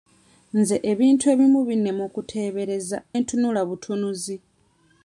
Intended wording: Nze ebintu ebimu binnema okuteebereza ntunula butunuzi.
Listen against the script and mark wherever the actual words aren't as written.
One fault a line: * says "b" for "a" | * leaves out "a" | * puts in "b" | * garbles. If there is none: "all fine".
all fine